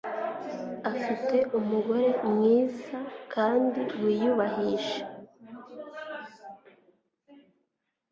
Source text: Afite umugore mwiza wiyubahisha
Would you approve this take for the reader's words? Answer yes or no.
no